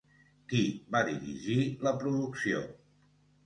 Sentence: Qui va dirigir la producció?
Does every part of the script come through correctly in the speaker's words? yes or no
yes